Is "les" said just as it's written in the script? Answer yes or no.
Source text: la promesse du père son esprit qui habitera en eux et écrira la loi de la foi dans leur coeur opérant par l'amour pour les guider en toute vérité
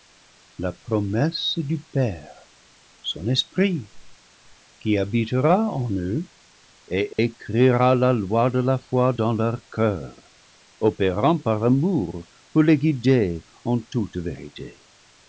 yes